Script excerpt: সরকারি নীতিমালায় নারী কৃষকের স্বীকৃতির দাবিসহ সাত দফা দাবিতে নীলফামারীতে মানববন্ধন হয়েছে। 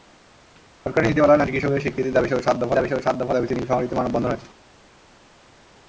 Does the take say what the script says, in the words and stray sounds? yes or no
no